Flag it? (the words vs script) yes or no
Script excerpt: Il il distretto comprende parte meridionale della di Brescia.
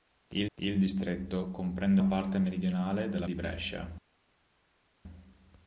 no